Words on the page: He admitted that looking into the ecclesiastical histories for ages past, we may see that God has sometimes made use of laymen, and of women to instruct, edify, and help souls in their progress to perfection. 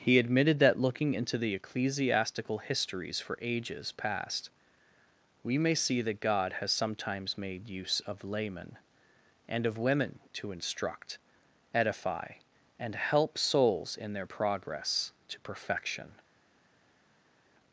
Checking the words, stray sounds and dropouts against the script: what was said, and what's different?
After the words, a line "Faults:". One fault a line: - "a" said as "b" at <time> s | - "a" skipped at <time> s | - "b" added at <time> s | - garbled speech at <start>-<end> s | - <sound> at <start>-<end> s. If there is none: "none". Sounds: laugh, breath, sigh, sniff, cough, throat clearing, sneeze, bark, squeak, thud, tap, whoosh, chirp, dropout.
He admitted that looking into the ecclesiastical histories for ages past, we may see that God has sometimes made use of laymen, and of women to instruct, edify, and help souls in their progress to perfection.
Faults:
none